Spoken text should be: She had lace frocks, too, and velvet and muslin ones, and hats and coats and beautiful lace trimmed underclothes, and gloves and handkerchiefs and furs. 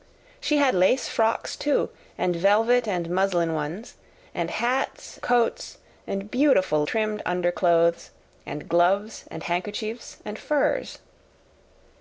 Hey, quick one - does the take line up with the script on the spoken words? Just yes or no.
no